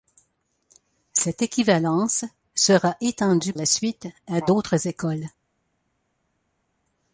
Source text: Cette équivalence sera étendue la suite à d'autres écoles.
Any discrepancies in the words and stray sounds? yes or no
no